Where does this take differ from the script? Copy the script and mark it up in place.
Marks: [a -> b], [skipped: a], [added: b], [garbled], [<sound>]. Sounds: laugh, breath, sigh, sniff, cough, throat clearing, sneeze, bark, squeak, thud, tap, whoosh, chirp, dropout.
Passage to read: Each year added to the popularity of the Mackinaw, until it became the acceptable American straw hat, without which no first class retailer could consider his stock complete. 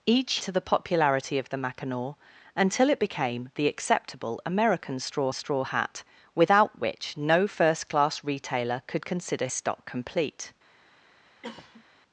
Each [skipped: year added] to the popularity of the Mackinaw, until it became the acceptable American straw [added: straw] hat, without which no first class retailer could consider [skipped: his] stock complete. [cough]